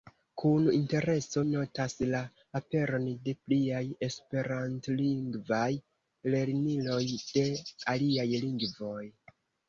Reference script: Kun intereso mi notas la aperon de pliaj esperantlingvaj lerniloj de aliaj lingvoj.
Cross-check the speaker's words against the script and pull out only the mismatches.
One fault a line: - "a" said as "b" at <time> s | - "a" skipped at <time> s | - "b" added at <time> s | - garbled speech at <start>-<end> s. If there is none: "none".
- "mi" skipped at 1.4 s